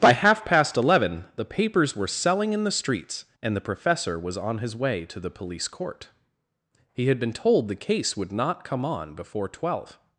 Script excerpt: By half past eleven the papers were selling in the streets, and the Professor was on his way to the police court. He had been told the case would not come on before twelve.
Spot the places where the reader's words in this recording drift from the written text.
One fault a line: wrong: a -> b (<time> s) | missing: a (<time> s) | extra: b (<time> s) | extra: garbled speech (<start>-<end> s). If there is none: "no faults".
no faults